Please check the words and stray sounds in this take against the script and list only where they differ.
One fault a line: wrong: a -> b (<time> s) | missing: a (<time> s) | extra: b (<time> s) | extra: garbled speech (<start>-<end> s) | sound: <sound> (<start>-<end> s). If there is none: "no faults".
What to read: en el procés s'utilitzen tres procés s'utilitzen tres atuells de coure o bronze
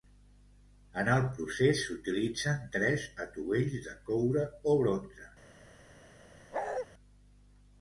missing: procés s'utilitzen tres (3.0 s)
sound: bark (6.5-6.9 s)